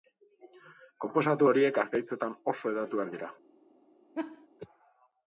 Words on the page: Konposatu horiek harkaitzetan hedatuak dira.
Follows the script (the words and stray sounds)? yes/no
no